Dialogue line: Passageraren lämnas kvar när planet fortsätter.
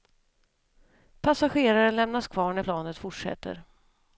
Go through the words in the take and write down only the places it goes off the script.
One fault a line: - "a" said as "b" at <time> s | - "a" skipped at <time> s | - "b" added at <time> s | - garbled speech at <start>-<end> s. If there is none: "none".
none